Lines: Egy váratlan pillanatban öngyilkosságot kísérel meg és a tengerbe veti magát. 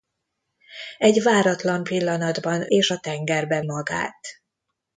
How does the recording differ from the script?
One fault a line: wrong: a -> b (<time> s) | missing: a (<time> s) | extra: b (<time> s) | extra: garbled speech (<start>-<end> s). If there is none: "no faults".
missing: öngyilkosságot kísérel meg (2.7 s)
missing: veti (3.6 s)